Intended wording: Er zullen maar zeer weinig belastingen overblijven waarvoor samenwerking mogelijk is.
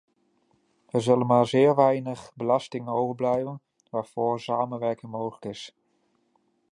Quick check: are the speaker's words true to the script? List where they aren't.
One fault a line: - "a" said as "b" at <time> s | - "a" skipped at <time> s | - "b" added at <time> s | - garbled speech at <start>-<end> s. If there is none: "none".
none